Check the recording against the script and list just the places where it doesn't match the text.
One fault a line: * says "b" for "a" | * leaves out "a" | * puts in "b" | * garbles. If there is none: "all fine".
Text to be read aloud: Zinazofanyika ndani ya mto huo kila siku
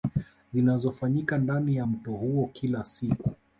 all fine